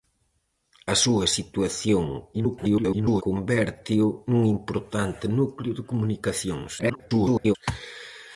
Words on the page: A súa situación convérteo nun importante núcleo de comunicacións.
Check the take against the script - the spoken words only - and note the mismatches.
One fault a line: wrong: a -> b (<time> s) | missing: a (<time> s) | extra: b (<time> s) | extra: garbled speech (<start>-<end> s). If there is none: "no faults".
extra: garbled speech (2.3-3.2 s)
extra: garbled speech (6.8-7.6 s)